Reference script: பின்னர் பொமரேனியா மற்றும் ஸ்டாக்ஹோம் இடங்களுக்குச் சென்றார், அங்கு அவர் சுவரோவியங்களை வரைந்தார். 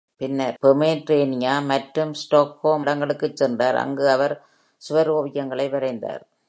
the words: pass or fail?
pass